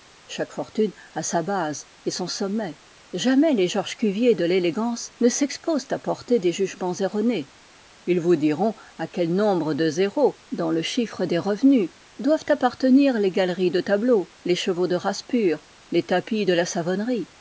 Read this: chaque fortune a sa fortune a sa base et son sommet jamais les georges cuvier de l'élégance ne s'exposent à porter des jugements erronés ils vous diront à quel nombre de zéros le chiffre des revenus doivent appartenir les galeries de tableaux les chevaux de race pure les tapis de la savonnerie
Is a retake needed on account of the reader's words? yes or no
yes